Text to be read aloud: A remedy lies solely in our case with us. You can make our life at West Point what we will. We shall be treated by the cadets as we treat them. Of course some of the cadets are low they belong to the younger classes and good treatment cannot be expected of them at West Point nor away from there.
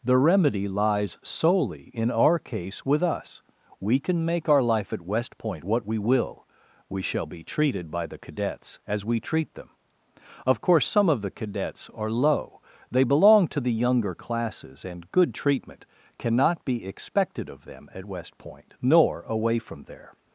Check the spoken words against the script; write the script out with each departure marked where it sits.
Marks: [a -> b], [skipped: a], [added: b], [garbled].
[A -> The] remedy lies solely in our case with us. [You -> We] can make our life at West Point what we will. We shall be treated by the cadets as we treat them. Of course some of the cadets are low they belong to the younger classes and good treatment cannot be expected of them at West Point nor away from there.